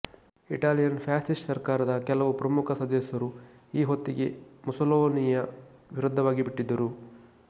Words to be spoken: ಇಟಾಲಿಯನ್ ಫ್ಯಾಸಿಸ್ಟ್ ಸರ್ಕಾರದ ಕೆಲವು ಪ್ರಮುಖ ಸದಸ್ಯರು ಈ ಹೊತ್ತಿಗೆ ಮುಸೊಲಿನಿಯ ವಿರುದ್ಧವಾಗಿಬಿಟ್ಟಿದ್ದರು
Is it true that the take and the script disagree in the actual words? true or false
false